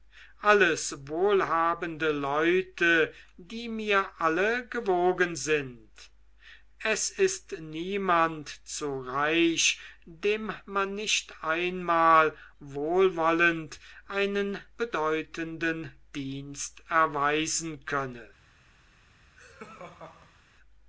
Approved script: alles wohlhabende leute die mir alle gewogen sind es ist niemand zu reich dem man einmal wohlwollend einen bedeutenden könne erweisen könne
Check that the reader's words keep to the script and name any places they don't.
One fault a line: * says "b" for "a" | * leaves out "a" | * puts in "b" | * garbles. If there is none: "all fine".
* puts in "nicht"
* says "dienst" for "könne"